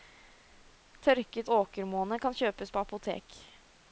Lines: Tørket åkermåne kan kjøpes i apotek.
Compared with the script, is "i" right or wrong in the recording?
wrong